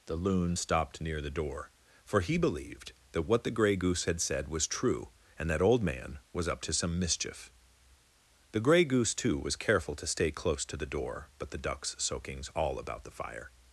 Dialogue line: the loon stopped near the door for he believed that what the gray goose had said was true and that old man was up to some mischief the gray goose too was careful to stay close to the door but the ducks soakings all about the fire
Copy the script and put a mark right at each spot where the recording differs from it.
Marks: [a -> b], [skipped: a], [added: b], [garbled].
the loon stopped near the door for he believed that what the gray goose had said was true and that old man was up to some mischief the gray goose too was careful to stay close to the door but the ducks soakings all about the fire